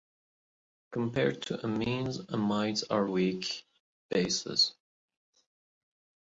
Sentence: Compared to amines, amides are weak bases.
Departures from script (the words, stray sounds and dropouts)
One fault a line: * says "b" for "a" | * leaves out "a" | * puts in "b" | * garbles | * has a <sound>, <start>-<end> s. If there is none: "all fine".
all fine